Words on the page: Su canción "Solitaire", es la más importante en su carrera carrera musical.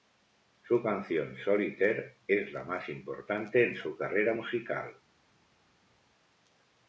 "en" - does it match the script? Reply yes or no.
yes